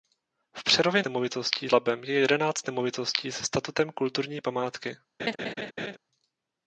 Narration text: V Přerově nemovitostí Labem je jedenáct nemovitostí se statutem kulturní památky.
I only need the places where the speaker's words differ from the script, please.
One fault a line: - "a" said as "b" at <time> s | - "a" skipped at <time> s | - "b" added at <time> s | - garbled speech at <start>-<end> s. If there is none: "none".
none